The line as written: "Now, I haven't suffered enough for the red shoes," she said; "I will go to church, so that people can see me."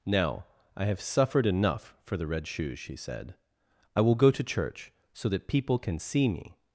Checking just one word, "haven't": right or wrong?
wrong